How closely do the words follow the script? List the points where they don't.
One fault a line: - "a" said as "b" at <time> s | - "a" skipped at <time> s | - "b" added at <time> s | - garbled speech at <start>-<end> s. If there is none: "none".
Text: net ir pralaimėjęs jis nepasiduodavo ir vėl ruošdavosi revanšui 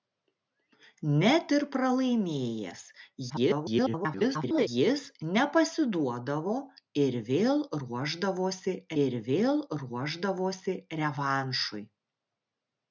- garbled speech at 3.3-4.7 s
- "ir vėl ruošdavosi" added at 9.0 s